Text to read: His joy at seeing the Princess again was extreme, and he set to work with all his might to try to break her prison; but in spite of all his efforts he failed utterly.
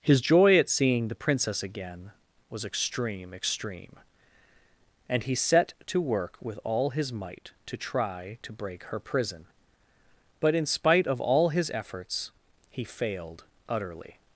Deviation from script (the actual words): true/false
true